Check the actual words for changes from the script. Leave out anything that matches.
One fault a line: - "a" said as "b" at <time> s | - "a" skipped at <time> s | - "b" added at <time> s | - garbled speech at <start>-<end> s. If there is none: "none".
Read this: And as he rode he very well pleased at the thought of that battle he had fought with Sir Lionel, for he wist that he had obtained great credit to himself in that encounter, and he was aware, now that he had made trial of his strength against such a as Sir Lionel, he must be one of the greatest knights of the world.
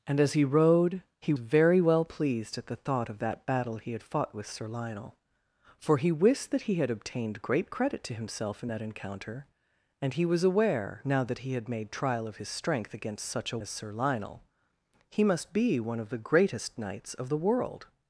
none